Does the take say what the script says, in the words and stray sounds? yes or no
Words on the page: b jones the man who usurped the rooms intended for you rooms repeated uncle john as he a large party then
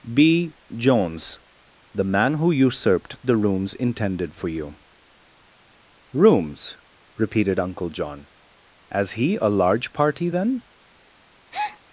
no